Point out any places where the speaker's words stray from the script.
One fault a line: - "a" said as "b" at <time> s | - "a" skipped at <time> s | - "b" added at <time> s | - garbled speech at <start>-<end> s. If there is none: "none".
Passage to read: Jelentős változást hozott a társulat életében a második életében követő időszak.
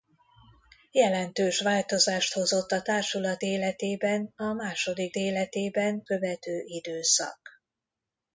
none